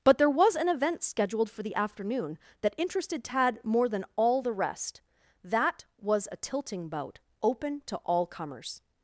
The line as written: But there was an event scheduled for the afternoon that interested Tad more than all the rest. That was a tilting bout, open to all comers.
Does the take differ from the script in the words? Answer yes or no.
no